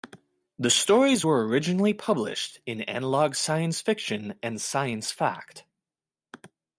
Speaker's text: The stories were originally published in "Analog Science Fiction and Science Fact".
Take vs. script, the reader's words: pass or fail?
pass